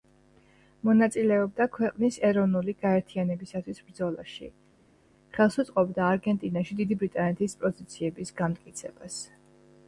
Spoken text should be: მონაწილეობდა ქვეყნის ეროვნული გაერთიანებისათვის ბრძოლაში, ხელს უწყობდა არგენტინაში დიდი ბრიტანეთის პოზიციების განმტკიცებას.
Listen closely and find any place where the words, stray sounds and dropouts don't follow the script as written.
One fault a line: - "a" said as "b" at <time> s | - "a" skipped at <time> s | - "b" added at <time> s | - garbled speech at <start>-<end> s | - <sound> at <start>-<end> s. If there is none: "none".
none